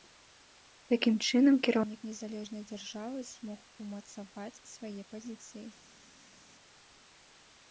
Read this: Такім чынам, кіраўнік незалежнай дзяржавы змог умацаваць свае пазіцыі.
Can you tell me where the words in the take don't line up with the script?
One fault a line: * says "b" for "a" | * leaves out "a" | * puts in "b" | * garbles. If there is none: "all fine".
all fine